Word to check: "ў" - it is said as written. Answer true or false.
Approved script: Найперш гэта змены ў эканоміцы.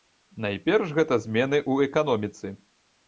true